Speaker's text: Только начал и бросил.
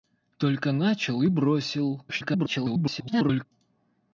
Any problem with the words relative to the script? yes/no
yes